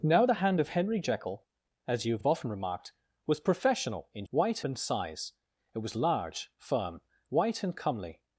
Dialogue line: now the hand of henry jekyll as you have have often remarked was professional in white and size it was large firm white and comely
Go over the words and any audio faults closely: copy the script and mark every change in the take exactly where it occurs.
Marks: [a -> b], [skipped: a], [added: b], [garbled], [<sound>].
now the hand of henry jekyll as you have have often remarked was professional in white and size it was large firm white and comely